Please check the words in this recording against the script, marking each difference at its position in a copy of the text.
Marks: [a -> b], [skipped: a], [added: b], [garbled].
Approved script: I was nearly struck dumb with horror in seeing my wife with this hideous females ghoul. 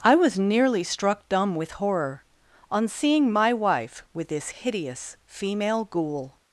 I was nearly struck dumb with horror [in -> on] seeing my wife with this hideous [females -> female] ghoul.